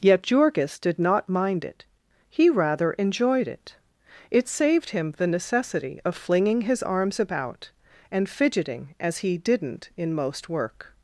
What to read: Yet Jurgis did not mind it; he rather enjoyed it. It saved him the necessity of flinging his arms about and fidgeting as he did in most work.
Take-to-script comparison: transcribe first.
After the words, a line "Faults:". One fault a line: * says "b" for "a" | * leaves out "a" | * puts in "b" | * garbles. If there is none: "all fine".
Yet Jurgis did not mind it; he rather enjoyed it. It saved him the necessity of flinging his arms about and fidgeting as he didn't in most work.
Faults:
* says "didn't" for "did"